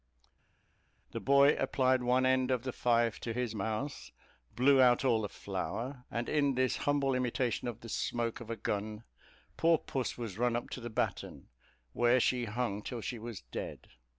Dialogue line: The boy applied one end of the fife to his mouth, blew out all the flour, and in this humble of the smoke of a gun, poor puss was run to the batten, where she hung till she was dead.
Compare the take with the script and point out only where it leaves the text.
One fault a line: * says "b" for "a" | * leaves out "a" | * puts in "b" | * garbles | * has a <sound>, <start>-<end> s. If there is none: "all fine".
* puts in "imitation"
* puts in "up"